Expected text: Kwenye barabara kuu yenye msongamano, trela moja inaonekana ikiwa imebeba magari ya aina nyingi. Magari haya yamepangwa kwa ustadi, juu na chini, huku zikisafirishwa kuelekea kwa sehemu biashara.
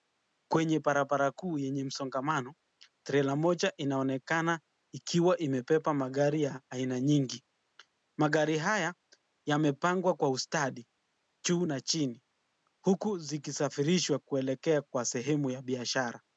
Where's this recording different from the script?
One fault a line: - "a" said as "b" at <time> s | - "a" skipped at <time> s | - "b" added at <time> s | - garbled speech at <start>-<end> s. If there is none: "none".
- "ya" added at 15.5 s